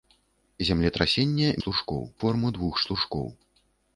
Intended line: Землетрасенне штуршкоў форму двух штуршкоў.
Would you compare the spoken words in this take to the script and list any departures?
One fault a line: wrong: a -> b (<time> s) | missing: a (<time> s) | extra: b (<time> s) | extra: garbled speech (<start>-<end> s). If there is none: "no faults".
no faults